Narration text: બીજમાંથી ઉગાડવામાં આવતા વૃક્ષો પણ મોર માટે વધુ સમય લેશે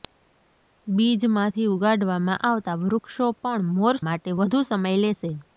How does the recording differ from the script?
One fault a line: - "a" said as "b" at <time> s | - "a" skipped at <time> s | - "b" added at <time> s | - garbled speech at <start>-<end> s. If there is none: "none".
none